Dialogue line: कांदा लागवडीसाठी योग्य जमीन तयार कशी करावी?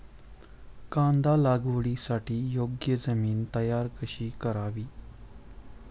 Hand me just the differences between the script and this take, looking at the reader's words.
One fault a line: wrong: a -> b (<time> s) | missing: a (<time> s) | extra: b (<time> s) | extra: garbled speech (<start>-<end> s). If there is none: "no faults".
no faults